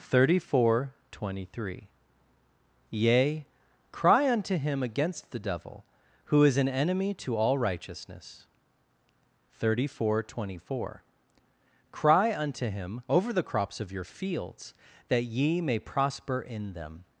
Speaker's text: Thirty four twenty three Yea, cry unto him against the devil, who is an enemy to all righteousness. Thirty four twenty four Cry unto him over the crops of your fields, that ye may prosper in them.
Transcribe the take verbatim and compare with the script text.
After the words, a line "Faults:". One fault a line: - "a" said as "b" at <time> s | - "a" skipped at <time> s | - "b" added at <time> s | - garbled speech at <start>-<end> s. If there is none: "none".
Thirty four twenty three Yea, cry unto him against the devil, who is an enemy to all righteousness. Thirty four twenty four Cry unto him over the crops of your fields, that ye may prosper in them.
Faults:
none